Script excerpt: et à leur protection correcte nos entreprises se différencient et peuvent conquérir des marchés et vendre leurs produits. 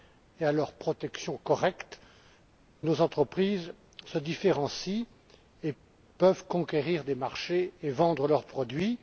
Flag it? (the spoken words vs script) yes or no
no